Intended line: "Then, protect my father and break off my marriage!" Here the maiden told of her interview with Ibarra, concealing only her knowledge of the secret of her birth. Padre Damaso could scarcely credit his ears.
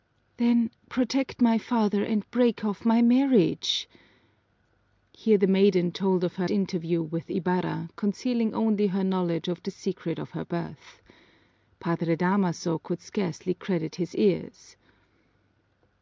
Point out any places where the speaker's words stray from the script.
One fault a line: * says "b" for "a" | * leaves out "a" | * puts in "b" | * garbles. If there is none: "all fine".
all fine